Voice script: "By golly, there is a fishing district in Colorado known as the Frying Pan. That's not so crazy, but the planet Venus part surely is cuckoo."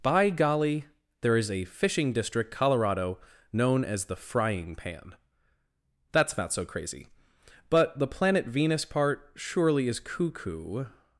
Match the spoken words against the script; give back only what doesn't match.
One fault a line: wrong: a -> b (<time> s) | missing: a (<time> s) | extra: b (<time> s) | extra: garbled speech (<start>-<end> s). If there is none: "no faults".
missing: in (2.5 s)